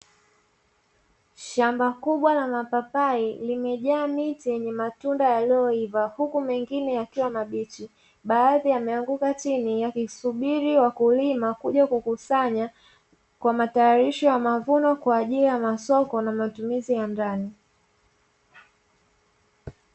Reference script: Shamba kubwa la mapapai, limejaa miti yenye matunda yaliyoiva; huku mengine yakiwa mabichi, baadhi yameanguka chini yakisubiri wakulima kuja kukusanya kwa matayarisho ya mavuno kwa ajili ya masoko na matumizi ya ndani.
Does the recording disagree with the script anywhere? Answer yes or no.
no